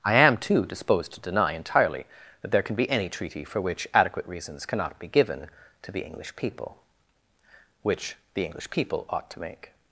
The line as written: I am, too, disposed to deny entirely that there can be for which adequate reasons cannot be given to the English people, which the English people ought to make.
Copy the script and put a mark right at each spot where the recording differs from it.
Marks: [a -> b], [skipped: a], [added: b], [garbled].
I am, too, disposed to deny entirely that there can be [added: any treaty] for which adequate reasons cannot be given to the English people, which the English people ought to make.